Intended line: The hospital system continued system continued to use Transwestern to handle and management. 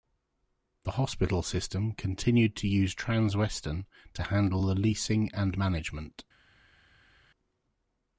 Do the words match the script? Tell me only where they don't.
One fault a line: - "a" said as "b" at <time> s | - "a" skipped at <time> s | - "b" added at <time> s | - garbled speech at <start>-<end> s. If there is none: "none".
- "system continued" skipped at 2.5 s
- "the leasing" added at 4.6 s